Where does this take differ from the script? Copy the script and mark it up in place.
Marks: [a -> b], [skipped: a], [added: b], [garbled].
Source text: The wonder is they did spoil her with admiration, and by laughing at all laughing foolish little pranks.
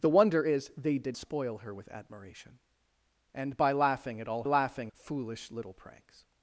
The wonder is they did spoil her with admiration, and by laughing at all laughing foolish little pranks.